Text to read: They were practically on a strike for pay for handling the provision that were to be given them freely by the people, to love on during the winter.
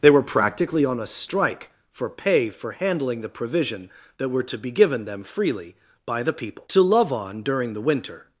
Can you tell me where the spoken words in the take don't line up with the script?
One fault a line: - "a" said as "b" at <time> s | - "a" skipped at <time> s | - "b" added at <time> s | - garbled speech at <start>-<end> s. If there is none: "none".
none